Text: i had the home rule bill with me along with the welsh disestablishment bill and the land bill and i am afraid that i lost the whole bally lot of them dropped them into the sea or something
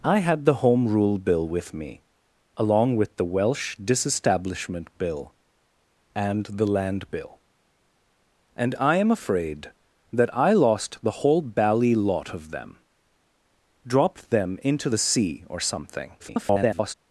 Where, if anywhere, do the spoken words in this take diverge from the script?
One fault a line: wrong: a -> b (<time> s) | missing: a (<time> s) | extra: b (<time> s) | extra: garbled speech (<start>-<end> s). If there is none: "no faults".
extra: garbled speech (16.2-16.9 s)